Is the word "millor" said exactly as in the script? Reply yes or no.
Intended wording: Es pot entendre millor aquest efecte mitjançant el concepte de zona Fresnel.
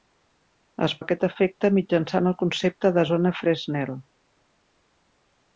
no